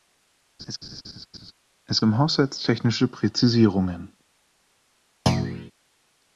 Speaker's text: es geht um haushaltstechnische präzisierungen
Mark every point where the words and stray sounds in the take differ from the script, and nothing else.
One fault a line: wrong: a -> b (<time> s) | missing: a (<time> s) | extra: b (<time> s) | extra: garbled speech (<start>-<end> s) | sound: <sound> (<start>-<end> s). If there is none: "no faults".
sound: laugh (0.6-1.5 s)
missing: geht (2.0 s)
sound: thud (5.3-5.7 s)